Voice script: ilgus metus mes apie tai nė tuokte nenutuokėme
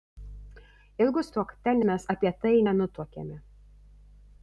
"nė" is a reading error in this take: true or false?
true